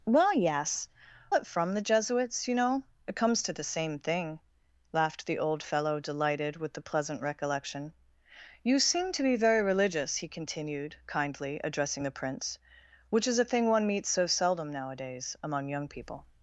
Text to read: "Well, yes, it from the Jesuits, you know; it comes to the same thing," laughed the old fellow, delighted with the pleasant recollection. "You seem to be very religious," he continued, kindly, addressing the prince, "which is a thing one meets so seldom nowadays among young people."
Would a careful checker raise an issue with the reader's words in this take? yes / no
no